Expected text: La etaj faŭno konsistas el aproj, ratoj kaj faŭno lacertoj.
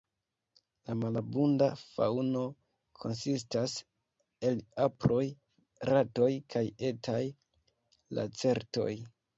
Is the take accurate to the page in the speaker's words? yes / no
no